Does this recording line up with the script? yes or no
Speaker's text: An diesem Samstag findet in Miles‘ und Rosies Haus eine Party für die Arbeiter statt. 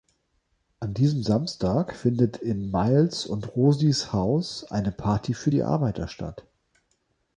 yes